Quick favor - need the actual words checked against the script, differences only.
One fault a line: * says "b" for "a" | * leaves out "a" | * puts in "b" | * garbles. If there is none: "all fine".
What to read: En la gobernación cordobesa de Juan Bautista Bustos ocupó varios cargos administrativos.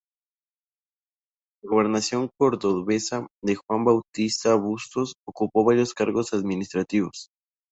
all fine